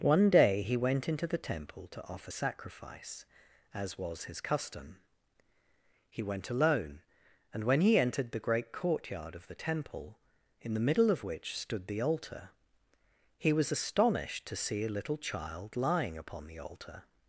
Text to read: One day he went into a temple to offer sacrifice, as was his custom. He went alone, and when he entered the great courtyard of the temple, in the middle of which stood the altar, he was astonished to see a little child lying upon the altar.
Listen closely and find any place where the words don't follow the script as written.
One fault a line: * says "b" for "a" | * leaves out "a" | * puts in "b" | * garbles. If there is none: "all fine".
* says "the" for "a"